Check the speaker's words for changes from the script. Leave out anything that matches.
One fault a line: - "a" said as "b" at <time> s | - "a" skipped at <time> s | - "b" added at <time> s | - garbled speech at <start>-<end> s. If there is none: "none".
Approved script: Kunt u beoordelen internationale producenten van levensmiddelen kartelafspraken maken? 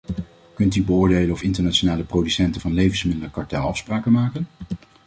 - "of" added at 1.3 s